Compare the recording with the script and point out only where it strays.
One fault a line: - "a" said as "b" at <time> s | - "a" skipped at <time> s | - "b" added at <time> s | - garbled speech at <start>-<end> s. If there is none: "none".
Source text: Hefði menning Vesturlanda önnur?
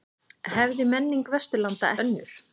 none